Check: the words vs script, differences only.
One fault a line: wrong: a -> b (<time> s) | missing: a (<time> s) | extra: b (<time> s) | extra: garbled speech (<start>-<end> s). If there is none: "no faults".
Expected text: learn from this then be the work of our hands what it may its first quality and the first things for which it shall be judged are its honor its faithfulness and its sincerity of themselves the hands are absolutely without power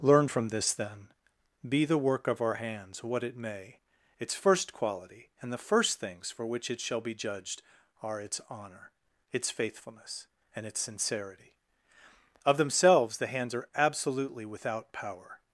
no faults